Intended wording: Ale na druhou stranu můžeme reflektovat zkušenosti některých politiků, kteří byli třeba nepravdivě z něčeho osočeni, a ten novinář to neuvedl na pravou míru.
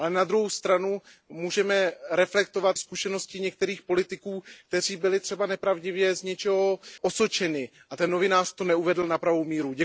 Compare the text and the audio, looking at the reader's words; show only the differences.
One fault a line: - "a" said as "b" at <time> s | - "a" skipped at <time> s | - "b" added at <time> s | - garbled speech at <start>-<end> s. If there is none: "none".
none